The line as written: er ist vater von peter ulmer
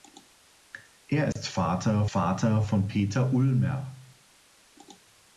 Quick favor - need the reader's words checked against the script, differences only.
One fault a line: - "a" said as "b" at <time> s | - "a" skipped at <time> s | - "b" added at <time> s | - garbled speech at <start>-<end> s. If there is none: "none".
- "vater" added at 2.1 s